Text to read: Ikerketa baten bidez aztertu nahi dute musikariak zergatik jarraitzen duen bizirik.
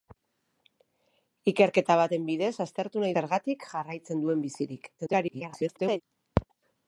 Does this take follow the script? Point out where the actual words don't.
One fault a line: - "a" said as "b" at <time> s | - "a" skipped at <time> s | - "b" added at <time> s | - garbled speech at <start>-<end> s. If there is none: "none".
- "dute musikariak" skipped at 3.1 s
- garbled speech at 5.0-6.0 s